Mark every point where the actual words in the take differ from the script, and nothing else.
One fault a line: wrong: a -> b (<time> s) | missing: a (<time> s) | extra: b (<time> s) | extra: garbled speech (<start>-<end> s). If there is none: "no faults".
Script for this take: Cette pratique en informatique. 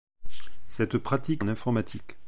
no faults